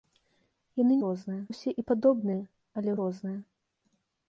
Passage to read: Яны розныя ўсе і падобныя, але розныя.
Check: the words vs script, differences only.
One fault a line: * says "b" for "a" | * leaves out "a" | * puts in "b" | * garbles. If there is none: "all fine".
all fine